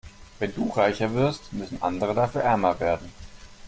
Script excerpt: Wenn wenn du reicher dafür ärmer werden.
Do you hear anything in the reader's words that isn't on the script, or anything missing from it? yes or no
yes